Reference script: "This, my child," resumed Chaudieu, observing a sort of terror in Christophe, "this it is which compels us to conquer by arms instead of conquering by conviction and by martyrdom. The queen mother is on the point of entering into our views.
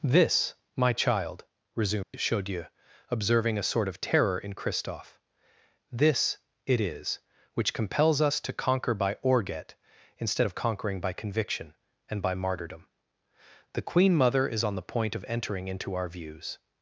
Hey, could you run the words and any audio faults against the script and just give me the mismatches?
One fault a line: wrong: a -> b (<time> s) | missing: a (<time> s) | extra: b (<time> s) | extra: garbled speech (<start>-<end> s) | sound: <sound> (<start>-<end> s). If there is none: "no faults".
sound: dropout (2.0-2.1 s)
wrong: arms -> orget (9.2 s)